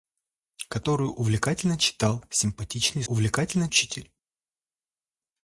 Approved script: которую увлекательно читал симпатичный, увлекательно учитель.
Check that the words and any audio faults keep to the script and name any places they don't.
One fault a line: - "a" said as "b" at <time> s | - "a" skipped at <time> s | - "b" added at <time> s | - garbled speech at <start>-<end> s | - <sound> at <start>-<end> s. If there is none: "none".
none